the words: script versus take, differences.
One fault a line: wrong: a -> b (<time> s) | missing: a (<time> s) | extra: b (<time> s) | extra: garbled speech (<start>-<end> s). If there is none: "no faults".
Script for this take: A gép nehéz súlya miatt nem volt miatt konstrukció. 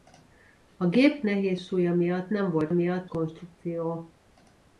no faults